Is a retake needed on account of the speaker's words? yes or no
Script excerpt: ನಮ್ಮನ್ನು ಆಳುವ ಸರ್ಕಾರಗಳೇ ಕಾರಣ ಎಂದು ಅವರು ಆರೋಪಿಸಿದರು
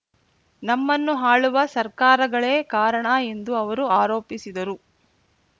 no